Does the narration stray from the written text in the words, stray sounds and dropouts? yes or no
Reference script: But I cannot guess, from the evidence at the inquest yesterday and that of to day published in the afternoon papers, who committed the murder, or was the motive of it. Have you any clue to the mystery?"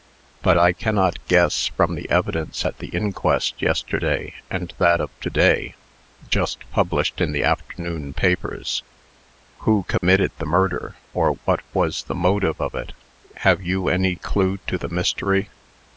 yes